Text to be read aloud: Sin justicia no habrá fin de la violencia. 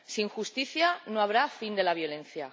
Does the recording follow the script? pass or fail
pass